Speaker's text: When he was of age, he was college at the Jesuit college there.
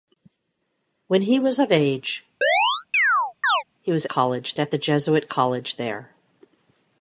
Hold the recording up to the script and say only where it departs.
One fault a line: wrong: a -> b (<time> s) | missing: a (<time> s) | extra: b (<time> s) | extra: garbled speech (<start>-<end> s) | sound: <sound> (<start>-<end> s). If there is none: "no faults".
sound: chirp (2.4-3.6 s)